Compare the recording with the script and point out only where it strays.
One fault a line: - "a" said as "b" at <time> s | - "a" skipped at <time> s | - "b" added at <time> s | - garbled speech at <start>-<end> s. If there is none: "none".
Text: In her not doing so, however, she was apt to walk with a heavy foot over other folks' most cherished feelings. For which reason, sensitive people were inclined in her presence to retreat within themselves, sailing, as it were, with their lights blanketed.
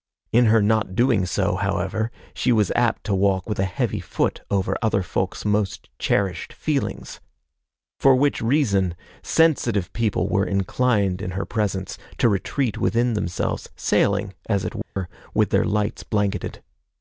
none